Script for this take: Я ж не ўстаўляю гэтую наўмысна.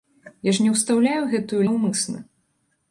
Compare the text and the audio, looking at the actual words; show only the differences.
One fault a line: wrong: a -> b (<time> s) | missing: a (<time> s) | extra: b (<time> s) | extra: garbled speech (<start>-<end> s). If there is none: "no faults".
no faults